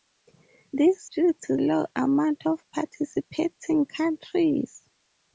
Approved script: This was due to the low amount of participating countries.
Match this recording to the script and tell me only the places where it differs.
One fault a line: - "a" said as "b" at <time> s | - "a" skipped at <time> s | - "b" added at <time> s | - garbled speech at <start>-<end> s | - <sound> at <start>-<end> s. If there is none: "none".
- "was" skipped at 1.1 s
- "the" skipped at 1.6 s